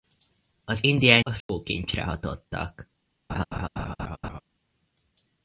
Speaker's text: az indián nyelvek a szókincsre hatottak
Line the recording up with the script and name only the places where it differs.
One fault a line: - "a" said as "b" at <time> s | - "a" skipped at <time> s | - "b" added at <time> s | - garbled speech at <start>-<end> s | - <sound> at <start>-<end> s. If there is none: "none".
- "nyelvek" skipped at 1.2 s
- dropout at 1.4-1.5 s
- laugh at 3.3-4.4 s